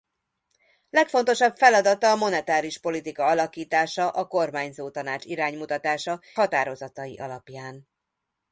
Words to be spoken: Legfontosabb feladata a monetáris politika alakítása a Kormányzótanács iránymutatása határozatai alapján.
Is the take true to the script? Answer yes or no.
yes